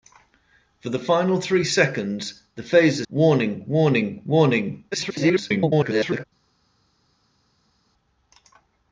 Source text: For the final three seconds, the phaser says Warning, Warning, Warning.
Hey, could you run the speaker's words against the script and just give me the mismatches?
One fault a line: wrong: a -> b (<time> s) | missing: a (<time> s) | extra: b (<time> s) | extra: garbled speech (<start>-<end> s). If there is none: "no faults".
missing: says (3.0 s)
extra: garbled speech (4.9-6.2 s)